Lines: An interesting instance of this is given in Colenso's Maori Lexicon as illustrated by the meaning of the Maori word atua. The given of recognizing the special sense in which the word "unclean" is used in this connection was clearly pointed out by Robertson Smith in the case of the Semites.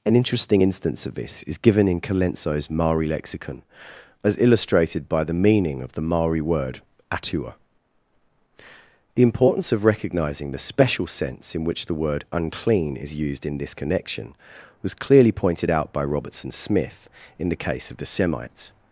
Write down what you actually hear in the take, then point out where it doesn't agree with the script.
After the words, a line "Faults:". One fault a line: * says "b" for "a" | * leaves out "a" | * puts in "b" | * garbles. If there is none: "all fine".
An interesting instance of this is given in Colenso's Maori Lexicon as illustrated by the meaning of the Maori word atua. The importance of recognizing the special sense in which the word "unclean" is used in this connection was clearly pointed out by Robertson Smith in the case of the Semites.
Faults:
* says "importance" for "given"